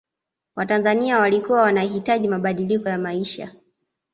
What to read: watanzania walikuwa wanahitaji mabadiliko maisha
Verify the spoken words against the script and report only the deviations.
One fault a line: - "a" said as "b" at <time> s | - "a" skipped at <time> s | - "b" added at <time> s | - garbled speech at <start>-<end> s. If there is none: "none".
- "ya" added at 2.9 s